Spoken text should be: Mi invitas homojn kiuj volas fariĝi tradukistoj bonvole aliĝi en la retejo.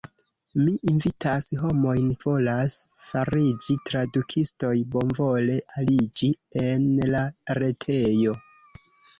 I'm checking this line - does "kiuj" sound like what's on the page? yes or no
no